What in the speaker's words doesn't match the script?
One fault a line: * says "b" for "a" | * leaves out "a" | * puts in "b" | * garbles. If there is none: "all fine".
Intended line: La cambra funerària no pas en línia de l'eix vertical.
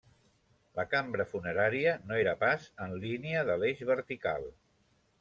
* puts in "era"